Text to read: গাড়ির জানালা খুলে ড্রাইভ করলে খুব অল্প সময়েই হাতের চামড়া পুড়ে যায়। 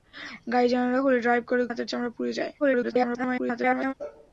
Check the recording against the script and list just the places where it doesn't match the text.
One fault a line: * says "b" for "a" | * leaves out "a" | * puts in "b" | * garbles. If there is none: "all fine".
* leaves out "খুব অল্প সময়েই"
* garbles